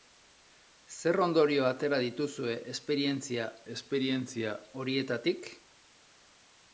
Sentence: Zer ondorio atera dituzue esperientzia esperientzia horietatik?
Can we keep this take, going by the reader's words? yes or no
yes